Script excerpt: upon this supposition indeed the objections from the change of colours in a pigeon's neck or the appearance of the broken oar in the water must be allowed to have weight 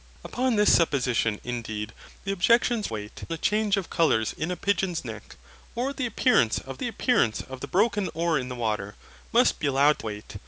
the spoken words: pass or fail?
fail